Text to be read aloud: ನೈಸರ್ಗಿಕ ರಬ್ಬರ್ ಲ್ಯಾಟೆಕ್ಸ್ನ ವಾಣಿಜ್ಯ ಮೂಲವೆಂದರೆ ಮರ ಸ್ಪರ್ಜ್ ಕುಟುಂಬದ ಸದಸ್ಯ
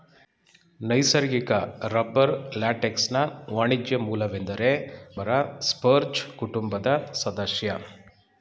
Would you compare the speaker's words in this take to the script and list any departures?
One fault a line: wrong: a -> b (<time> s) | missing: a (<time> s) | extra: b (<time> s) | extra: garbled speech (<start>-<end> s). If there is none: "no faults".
no faults